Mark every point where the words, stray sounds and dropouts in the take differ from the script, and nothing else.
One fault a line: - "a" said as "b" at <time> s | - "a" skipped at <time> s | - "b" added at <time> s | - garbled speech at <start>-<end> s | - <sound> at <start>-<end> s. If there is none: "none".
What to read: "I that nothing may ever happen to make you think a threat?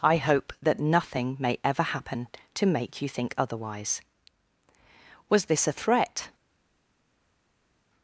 - "hope" added at 0.2 s
- "otherwise Was this" added at 3.4 s